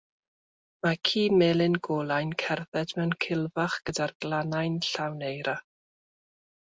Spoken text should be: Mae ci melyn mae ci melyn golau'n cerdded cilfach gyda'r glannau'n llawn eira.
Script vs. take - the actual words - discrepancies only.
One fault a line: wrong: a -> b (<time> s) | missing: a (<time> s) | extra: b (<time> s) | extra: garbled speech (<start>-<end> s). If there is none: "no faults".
missing: mae ci melyn (1.8 s)
extra: mewn (3.0 s)